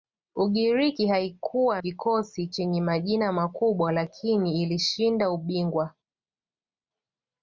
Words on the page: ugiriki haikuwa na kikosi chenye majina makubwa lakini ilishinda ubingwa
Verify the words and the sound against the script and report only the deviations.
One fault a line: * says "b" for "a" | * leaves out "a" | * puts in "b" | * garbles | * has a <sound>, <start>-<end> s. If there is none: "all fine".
* leaves out "na"